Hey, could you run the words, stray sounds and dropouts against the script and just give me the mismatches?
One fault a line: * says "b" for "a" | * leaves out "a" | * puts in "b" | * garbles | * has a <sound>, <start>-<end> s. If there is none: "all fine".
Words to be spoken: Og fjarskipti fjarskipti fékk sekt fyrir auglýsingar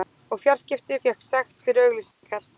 * leaves out "fjarskipti"
* has a dropout, 2.1-2.2 s